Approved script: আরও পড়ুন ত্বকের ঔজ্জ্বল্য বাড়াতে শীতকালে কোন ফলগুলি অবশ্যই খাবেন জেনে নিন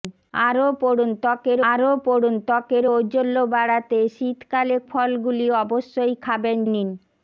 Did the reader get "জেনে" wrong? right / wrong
wrong